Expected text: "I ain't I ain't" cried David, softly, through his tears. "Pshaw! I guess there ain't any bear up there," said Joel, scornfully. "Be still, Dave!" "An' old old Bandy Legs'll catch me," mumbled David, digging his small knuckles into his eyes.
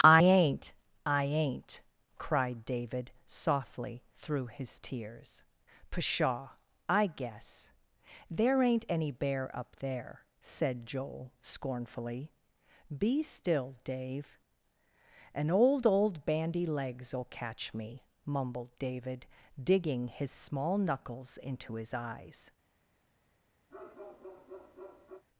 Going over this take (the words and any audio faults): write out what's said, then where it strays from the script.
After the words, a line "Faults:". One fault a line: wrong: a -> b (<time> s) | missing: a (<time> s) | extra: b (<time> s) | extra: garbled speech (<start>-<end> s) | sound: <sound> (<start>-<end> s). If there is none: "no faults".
"I ain't I ain't" cried David, softly, through his tears. "Pshaw! I guess there ain't any bear up there," said Joel, scornfully. "Be still, Dave!" "An' old old Bandy Legs'll catch me," mumbled David, digging his small knuckles into his eyes.
Faults:
sound: bark (23.7-25.2 s)